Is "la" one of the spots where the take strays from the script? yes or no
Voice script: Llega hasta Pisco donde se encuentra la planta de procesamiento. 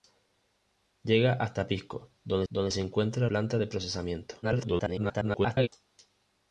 yes